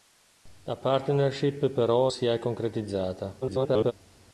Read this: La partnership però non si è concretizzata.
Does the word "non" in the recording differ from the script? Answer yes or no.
yes